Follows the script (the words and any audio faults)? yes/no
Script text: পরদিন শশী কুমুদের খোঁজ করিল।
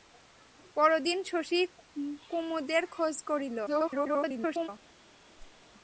no